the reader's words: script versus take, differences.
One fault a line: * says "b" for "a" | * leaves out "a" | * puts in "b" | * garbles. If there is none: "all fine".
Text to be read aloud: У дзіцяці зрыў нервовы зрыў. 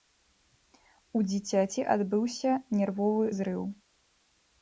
* says "адбыўся" for "зрыў"